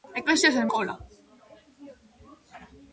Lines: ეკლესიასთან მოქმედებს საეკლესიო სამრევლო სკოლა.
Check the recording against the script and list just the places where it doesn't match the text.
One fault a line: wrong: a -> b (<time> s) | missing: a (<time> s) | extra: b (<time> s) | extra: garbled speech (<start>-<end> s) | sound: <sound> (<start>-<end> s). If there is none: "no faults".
missing: მოქმედებს საეკლესიო სამრევლო (0.7 s)